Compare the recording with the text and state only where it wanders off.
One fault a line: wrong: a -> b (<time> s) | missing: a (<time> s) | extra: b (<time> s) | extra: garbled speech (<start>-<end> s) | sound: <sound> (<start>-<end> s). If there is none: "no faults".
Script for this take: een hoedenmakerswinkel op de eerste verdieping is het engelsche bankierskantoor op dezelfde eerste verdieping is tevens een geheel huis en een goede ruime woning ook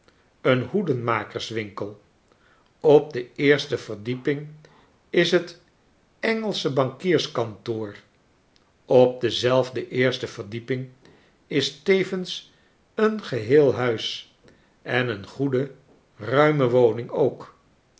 no faults